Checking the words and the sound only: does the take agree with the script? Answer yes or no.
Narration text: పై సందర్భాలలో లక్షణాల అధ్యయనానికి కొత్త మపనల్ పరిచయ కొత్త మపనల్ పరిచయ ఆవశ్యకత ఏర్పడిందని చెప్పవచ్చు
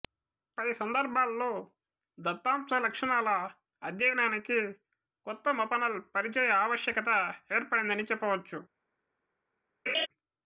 no